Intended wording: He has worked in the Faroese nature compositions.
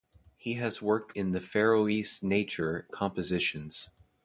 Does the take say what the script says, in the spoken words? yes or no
yes